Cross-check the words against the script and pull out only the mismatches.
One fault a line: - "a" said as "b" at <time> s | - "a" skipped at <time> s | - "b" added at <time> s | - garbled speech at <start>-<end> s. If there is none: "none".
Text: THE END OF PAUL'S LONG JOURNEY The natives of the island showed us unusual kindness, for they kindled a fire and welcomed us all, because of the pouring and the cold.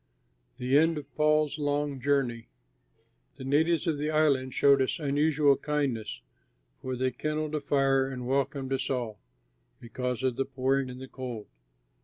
none